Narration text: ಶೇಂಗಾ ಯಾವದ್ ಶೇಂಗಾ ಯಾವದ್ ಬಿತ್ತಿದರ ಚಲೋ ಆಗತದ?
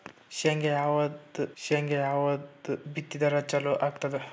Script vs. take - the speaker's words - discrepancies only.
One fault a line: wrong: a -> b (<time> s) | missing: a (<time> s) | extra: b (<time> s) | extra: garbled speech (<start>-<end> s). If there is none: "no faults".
no faults